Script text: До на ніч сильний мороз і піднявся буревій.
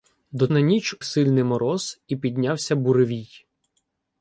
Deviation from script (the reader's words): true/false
false